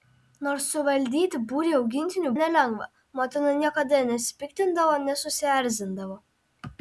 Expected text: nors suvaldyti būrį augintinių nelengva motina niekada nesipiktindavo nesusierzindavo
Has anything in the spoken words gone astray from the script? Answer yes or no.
no